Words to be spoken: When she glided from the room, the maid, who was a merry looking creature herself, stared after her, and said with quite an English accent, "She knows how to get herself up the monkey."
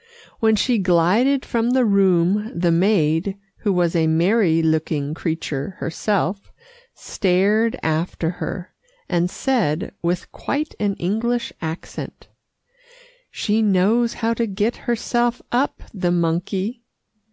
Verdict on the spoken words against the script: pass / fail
pass